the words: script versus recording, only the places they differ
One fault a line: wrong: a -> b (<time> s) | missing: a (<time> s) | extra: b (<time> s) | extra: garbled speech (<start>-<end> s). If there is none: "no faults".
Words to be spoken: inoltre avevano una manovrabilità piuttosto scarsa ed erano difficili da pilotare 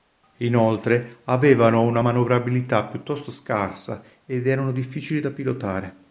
no faults